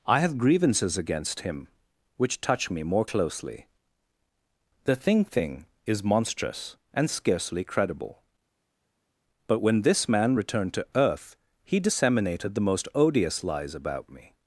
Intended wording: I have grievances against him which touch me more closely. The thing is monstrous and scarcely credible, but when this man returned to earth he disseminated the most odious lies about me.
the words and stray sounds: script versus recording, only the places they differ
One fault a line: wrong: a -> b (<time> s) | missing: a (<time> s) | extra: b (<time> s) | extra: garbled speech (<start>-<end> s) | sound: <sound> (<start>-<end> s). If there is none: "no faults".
extra: thing (5.3 s)